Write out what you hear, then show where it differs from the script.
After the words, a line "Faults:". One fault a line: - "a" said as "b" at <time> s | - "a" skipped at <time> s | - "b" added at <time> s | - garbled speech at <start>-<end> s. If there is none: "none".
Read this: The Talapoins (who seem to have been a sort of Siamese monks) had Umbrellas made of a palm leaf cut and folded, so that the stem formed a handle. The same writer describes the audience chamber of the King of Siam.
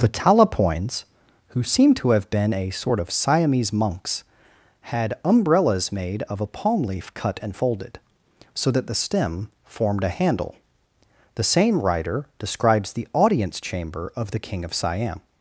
The Talapoins (who seem to have been a sort of Siamese monks) had Umbrellas made of a palm leaf cut and folded, so that the stem formed a handle. The same writer describes the audience chamber of the King of Siam.
Faults:
none